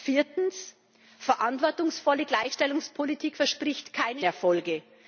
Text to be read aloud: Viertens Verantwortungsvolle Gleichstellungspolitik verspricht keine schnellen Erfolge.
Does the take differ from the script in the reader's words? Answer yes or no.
yes